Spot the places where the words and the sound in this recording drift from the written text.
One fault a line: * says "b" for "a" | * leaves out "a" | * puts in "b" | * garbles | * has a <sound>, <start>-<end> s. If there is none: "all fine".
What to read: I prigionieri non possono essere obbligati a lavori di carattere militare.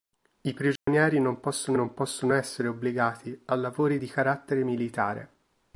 * has a dropout, 0.8-0.9 s
* puts in "non possono"